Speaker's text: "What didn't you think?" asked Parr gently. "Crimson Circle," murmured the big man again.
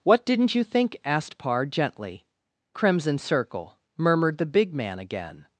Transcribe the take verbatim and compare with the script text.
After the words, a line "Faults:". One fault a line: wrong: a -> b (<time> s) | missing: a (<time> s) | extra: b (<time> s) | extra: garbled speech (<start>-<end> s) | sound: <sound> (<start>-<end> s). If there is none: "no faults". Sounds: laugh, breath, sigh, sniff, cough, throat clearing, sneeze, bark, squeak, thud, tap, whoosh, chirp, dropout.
"What didn't you think?" asked Parr gently. "Crimson Circle," murmured the big man again.
Faults:
no faults